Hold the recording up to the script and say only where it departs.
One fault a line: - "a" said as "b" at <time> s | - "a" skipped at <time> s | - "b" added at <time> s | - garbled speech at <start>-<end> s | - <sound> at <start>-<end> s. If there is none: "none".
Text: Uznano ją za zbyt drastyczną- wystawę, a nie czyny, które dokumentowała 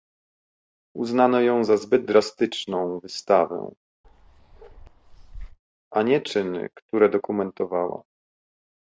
- bark at 4.0-5.6 s